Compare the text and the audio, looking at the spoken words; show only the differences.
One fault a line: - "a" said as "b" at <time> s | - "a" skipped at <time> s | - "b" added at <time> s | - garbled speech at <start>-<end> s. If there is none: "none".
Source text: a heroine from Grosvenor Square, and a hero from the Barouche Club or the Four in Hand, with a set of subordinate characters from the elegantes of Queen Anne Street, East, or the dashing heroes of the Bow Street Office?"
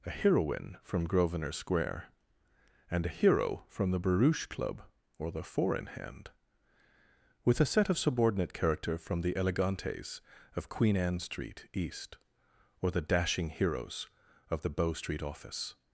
- "characters" said as "character" at 8.5 s